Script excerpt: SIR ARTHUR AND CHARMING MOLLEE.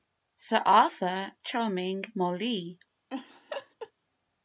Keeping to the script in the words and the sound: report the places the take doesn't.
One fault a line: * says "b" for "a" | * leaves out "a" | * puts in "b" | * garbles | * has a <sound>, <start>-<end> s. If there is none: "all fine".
* leaves out "AND"
* has a laugh, 3.1-3.9 s